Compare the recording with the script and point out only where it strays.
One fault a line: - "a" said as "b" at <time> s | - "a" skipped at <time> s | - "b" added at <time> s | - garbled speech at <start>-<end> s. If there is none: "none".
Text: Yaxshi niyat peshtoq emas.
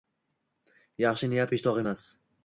none